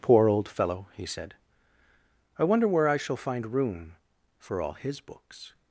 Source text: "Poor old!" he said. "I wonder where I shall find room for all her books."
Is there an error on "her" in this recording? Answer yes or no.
yes